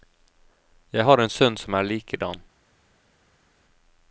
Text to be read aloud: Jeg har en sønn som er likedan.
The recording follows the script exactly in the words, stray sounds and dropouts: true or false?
true